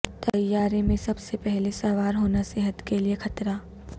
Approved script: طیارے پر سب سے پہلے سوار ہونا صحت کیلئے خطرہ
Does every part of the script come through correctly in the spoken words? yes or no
no